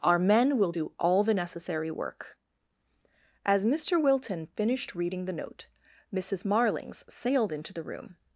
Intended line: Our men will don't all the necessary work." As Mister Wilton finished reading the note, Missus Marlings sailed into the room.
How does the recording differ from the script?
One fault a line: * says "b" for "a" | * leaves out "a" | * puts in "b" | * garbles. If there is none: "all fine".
* says "do" for "don't"